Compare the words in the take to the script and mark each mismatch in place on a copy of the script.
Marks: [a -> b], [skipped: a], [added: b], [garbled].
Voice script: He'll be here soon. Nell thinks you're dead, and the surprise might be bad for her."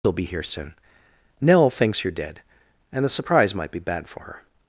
He'll be here soon. Nell thinks you're dead, and the surprise might be bad for her."